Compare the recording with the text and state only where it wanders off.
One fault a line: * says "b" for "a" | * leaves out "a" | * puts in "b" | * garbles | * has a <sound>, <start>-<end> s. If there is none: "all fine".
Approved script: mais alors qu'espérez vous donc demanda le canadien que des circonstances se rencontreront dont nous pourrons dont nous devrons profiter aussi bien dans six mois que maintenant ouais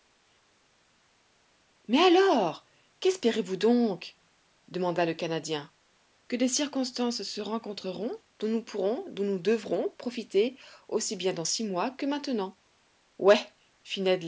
all fine